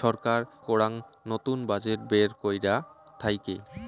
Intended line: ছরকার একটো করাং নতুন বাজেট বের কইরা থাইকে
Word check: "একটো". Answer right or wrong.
wrong